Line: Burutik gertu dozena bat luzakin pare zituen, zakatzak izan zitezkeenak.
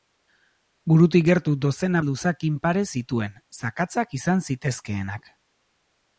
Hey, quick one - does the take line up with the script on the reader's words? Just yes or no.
no